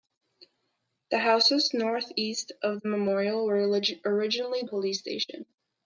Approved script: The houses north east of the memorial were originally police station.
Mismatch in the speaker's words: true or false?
false